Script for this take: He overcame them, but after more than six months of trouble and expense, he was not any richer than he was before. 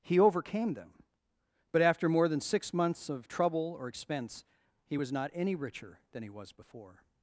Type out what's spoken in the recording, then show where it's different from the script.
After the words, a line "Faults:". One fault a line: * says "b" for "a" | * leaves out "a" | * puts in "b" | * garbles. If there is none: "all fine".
He overcame them, but after more than six months of trouble or expense, he was not any richer than he was before.
Faults:
* says "or" for "and"